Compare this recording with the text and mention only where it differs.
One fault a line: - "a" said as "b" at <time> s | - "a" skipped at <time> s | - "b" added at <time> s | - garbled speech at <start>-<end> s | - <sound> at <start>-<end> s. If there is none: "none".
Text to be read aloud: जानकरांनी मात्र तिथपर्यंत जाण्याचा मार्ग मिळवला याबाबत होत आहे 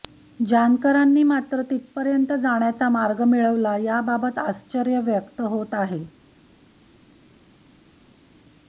- "आश्चर्य व्यक्त" added at 4.4 s